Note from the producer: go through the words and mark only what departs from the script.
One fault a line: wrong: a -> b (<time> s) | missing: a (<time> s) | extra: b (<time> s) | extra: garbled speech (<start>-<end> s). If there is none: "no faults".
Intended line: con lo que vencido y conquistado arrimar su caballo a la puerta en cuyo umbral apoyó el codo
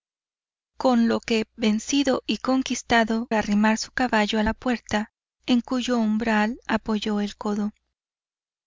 no faults